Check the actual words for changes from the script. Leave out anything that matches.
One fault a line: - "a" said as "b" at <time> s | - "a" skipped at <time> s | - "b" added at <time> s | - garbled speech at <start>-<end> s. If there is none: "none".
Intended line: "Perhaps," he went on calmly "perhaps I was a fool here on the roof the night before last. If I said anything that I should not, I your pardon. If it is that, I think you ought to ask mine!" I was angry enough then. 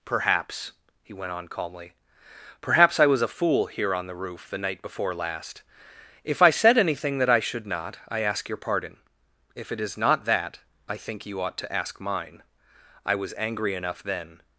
- "ask" added at 8.2 s
- "not" added at 10.0 s